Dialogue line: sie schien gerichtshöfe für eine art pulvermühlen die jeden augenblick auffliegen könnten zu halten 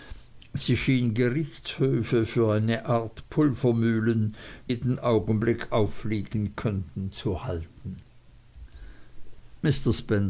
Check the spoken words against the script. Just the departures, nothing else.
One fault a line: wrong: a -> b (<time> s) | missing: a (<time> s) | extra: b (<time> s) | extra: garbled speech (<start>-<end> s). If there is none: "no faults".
missing: die (4.3 s)